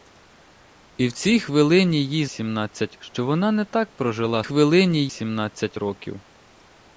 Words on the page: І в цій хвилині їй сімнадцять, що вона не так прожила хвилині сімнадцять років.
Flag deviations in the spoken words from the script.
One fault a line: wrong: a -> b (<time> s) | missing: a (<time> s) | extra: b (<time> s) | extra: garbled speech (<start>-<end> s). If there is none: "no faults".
no faults